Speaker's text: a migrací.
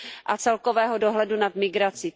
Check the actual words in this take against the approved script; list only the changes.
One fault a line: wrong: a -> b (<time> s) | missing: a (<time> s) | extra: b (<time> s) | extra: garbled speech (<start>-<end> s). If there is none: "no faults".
extra: celkového dohledu nad (0.3 s)